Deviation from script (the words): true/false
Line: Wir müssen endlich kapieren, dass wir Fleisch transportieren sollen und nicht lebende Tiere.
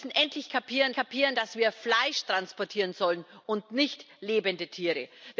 true